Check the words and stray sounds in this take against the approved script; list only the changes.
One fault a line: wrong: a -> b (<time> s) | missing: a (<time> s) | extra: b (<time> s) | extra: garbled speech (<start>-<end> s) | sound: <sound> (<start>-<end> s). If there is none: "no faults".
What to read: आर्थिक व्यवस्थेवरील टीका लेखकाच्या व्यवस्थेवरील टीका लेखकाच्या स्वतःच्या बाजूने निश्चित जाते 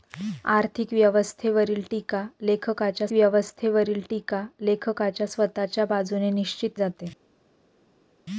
no faults